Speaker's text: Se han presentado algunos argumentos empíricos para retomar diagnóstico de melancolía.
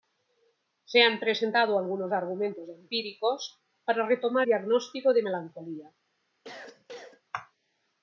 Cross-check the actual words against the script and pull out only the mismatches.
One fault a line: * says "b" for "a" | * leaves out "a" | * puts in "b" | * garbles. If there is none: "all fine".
all fine